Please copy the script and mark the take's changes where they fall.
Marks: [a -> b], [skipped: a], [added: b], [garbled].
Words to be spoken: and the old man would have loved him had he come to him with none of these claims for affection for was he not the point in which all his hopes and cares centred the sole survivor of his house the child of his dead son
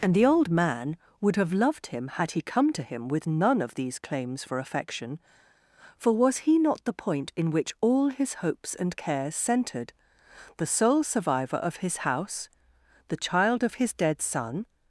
and the old man would have loved him had he come to him with none of these claims for affection for was he not the point in which all his hopes and cares centred the sole survivor of his house the child of his dead son